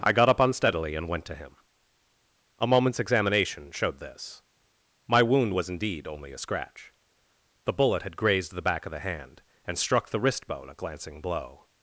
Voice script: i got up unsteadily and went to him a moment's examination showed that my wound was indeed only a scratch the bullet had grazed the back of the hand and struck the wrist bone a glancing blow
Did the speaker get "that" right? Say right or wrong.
wrong